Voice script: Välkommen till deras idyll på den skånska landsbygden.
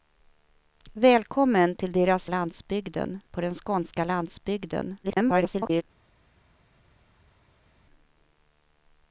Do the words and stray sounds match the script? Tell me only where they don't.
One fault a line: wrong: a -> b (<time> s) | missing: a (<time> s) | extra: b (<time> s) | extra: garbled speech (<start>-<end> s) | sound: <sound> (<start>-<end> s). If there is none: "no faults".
wrong: idyll -> landsbygden (2.3 s)
extra: garbled speech (5.0-5.8 s)